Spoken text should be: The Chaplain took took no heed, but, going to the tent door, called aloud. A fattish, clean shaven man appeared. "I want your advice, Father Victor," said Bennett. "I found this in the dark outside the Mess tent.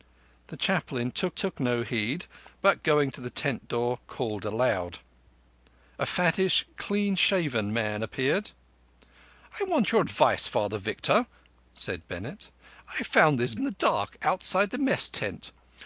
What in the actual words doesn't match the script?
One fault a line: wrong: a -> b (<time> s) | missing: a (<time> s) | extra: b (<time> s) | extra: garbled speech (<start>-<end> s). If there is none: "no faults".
no faults